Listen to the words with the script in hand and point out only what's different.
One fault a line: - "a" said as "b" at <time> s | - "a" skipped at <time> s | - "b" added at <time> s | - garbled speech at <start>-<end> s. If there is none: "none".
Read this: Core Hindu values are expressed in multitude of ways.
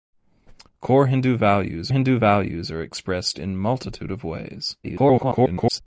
- "Hindu values" added at 1.9 s
- garbled speech at 4.8-5.8 s